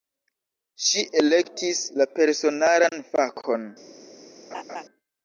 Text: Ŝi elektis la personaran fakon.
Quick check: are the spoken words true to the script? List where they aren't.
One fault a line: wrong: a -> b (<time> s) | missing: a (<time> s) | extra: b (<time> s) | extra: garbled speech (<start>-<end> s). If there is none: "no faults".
no faults